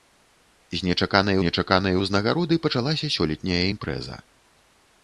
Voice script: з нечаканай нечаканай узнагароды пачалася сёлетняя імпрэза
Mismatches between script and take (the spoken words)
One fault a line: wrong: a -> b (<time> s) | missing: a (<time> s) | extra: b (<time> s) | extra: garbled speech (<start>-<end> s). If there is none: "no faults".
no faults